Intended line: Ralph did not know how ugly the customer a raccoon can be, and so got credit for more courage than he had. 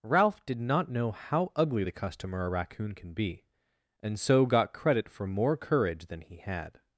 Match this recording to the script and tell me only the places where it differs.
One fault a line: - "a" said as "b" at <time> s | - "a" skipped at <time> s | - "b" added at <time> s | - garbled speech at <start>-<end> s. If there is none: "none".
none